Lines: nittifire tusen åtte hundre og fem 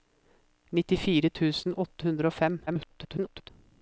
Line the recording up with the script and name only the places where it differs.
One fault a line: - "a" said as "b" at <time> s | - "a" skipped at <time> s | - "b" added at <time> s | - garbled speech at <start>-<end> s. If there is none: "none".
- garbled speech at 2.7-3.5 s